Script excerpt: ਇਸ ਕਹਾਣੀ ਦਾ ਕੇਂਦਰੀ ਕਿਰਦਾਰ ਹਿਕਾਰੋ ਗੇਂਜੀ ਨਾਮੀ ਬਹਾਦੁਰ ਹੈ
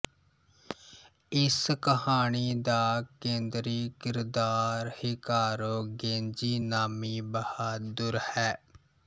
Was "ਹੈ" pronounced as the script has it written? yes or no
yes